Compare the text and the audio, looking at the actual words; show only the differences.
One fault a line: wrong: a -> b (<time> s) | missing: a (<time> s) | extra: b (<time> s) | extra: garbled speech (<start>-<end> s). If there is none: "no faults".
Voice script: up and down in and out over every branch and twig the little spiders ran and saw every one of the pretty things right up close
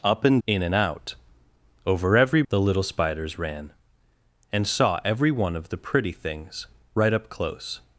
missing: down (0.4 s)
missing: branch and twig (2.4 s)